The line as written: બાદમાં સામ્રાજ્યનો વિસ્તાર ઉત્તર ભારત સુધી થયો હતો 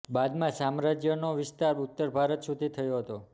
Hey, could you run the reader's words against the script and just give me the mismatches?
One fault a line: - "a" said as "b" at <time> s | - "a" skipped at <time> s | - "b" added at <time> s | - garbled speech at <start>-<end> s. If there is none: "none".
none